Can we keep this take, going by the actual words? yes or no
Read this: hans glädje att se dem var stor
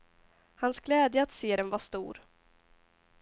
yes